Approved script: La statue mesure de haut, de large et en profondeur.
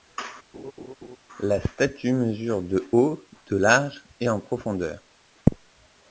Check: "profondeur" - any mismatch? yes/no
no